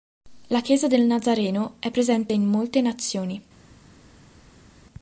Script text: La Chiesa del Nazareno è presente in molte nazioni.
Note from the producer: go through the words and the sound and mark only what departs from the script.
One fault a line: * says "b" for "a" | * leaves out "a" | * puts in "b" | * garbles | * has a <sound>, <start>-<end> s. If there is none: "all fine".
all fine